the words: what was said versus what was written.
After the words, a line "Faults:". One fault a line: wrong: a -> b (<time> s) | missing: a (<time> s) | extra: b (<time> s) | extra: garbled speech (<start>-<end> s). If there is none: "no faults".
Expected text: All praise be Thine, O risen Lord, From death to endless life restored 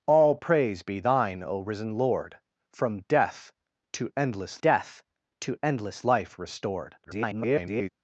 All praise be Thine, O risen Lord, From death to endless death to endless life restored [garbled]
Faults:
extra: death to endless (4.6 s)
extra: garbled speech (7.0-7.9 s)